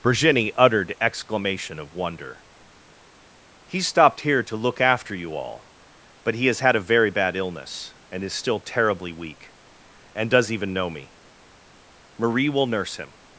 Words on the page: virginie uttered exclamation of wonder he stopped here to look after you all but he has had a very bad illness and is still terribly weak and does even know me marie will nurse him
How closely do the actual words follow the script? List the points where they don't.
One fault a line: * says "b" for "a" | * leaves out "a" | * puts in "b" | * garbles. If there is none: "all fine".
all fine